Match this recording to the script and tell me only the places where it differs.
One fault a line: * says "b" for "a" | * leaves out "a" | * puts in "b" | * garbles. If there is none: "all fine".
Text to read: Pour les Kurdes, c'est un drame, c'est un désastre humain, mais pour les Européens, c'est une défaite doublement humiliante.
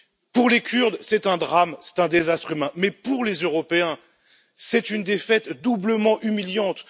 all fine